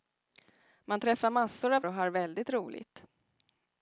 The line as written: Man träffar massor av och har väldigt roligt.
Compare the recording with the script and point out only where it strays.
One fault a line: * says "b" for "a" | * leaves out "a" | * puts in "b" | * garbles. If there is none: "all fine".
all fine